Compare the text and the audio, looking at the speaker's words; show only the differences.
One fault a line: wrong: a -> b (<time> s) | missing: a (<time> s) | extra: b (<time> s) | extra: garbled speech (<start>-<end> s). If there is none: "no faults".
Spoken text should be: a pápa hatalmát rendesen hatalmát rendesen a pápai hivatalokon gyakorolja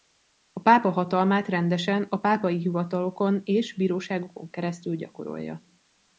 missing: hatalmát rendesen (2.1 s)
extra: és bíróságokon keresztül (3.4 s)